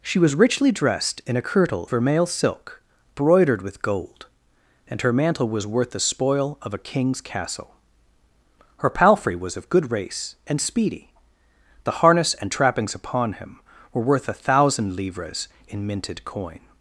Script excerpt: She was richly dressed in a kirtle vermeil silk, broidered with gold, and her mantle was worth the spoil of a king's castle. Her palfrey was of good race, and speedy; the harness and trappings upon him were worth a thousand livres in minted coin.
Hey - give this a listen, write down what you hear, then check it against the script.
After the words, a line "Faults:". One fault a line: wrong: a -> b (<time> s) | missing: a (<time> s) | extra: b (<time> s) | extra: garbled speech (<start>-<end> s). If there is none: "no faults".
She was richly dressed in a kirtle vermeil silk, broidered with gold, and her mantle was worth the spoil of a king's castle. Her palfrey was of good race, and speedy; the harness and trappings upon him were worth a thousand livres in minted coin.
Faults:
no faults